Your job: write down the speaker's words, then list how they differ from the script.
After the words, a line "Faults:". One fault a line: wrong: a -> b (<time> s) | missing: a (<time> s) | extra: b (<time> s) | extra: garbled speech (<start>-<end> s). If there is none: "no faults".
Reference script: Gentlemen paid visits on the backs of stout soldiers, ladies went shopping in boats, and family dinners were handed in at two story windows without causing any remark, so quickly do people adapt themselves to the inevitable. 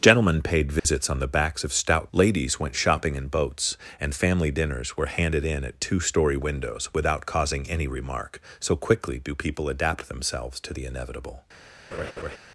Gentlemen paid visits on the backs of stout ladies went shopping in boats, and family dinners were handed in at two story windows without causing any remark, so quickly do people adapt themselves to the inevitable.
Faults:
missing: soldiers (2.1 s)